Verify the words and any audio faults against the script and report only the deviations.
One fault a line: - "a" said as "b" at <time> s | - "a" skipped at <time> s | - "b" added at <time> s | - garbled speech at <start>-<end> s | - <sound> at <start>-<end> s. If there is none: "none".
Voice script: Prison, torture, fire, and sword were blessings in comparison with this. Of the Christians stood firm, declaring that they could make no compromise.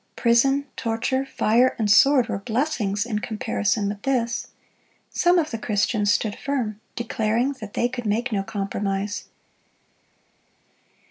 - "Some" added at 5.1 s